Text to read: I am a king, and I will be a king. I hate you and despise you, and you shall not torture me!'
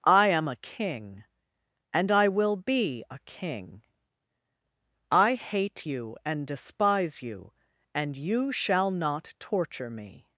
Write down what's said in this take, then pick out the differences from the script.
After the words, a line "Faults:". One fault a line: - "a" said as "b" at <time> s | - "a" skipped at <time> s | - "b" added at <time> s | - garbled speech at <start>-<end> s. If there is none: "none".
I am a king, and I will be a king. I hate you and despise you, and you shall not torture me!'
Faults:
none